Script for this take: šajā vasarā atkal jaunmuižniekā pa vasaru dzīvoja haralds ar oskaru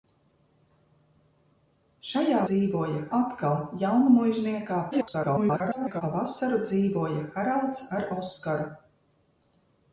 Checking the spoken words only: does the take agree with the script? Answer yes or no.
no